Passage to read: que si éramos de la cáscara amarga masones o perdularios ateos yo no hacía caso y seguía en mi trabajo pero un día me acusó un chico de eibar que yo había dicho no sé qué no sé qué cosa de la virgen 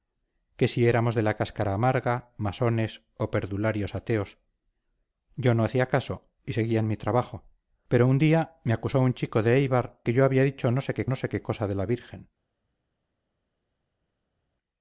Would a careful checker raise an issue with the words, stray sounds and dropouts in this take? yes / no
no